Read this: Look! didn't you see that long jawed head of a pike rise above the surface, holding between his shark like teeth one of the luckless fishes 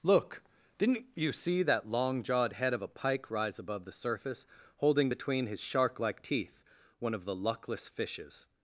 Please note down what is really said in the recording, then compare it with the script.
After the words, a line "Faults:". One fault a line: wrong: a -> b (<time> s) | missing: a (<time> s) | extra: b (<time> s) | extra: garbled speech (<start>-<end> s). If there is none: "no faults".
Look! didn't you see that long jawed head of a pike rise above the surface, holding between his shark like teeth one of the luckless fishes
Faults:
no faults